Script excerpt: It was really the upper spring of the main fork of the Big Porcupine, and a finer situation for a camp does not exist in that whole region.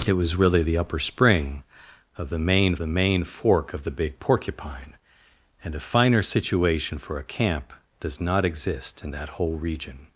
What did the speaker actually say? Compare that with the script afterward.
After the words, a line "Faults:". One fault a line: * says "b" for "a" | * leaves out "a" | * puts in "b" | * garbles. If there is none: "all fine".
It was really the upper spring of the main the main fork of the Big Porcupine, and a finer situation for a camp does not exist in that whole region.
Faults:
* puts in "the main"